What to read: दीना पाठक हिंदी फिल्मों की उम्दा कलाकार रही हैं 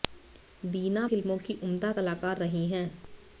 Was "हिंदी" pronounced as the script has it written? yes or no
no